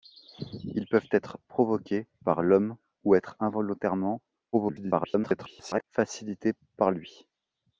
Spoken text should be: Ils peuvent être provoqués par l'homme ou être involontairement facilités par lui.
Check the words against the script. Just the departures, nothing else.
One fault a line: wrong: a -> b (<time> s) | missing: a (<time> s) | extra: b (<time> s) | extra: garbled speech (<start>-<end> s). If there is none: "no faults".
extra: garbled speech (4.5-5.8 s)